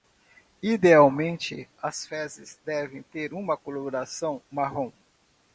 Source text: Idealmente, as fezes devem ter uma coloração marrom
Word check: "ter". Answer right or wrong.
right